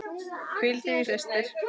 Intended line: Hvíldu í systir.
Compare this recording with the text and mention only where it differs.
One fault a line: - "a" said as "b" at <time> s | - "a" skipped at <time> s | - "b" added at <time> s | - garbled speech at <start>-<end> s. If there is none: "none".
none